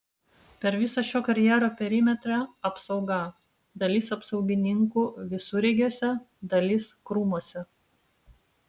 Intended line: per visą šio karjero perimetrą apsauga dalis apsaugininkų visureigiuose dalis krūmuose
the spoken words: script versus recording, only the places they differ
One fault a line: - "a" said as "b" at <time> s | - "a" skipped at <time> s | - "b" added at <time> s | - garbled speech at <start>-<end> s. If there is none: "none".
none